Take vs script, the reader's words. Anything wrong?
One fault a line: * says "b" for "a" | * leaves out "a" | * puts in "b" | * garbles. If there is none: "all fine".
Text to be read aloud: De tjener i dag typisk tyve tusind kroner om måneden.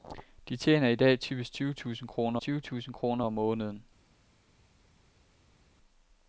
* puts in "tyve tusind kroner"